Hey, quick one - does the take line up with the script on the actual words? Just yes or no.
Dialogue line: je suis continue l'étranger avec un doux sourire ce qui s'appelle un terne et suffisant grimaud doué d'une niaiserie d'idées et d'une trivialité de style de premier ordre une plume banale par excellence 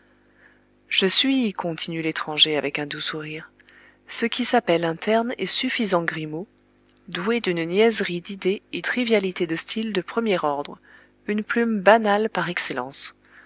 no